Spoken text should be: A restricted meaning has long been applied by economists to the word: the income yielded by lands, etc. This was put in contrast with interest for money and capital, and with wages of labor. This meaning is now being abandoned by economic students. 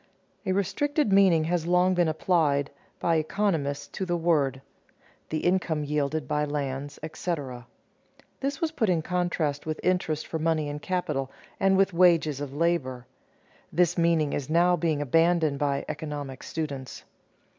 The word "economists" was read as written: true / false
true